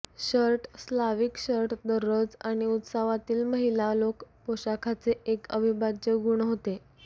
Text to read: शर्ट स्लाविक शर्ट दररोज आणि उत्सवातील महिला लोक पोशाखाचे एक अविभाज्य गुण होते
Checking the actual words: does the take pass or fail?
pass